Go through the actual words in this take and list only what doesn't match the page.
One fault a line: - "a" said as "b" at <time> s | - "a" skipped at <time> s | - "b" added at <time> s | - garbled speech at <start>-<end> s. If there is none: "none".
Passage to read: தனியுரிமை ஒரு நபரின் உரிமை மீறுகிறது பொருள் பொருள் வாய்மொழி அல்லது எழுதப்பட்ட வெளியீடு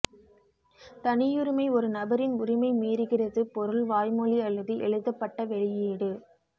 - "பொருள்" skipped at 3.8 s